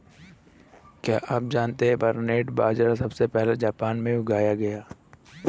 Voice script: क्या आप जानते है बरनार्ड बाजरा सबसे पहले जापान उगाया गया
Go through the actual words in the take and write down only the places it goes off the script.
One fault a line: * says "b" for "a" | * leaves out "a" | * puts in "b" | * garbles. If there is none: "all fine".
* puts in "में"